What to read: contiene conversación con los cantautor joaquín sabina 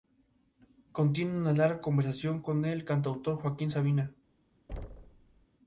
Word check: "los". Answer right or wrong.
wrong